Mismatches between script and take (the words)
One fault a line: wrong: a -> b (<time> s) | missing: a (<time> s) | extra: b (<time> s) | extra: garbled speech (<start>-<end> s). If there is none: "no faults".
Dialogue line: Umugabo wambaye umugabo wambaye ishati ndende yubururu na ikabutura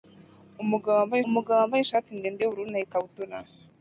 no faults